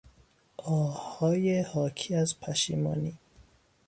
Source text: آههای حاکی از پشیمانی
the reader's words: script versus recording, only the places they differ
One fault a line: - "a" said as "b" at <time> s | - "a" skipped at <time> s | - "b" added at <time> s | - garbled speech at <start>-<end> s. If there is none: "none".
none